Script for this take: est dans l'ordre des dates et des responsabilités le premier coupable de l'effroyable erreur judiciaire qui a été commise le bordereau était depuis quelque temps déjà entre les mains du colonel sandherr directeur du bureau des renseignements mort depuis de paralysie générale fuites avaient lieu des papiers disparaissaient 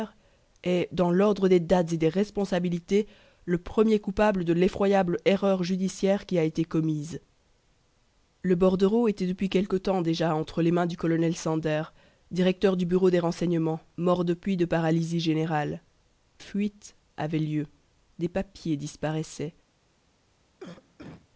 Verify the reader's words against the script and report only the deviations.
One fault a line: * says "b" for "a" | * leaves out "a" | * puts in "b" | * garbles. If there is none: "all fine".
all fine